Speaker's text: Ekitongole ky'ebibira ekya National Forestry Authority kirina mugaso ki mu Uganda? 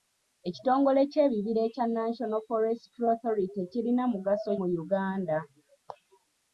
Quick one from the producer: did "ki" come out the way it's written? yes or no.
no